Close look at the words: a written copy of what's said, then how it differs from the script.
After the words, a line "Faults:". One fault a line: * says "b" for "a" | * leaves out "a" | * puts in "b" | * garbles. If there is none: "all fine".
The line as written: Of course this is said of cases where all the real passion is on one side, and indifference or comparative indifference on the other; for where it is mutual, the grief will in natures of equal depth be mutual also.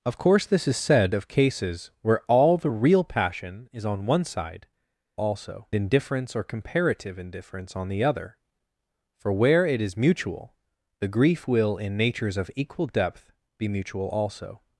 Of course this is said of cases where all the real passion is on one side, also indifference or comparative indifference on the other; for where it is mutual, the grief will in natures of equal depth be mutual also.
Faults:
* says "also" for "and"